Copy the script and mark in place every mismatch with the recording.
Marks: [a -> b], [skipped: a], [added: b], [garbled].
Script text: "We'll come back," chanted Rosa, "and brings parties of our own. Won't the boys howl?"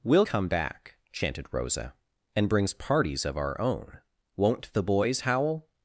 "We'll come back," chanted Rosa, "and brings parties of our own. Won't the boys howl?"